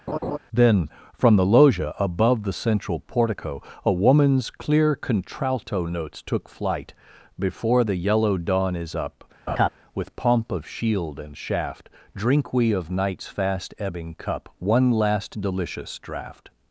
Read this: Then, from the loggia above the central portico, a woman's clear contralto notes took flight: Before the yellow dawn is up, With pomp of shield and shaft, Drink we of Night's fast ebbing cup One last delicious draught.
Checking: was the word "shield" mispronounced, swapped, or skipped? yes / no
no